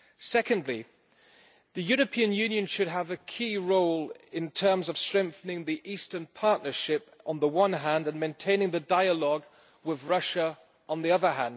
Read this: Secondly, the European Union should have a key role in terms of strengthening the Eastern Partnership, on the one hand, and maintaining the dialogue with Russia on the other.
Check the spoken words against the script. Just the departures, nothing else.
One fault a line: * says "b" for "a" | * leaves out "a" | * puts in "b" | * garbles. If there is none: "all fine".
all fine